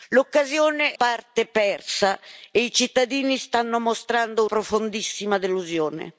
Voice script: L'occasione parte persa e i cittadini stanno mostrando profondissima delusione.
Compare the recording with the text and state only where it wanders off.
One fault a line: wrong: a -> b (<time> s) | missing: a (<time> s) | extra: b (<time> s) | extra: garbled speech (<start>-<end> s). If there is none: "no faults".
no faults